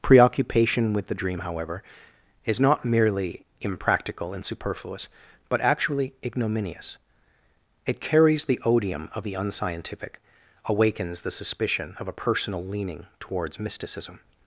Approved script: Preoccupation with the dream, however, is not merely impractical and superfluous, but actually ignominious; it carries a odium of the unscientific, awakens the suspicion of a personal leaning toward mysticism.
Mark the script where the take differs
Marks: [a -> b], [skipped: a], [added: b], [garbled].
Preoccupation with the dream, however, is not merely impractical and superfluous, but actually ignominious; it carries [a -> the] odium of the unscientific, awakens the suspicion of a personal leaning [toward -> towards] mysticism.